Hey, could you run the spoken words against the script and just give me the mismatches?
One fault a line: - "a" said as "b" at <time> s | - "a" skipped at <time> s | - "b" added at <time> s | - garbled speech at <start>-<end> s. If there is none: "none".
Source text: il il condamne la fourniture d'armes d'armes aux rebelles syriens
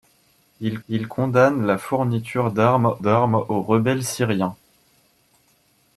none